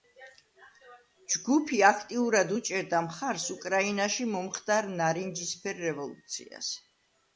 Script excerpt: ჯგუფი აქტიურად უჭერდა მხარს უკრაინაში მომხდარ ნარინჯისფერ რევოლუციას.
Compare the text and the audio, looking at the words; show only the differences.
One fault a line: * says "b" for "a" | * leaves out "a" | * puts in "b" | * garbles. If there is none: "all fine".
all fine